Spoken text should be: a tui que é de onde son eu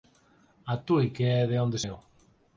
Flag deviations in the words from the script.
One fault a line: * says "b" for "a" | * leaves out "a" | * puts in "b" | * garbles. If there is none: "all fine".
* leaves out "son"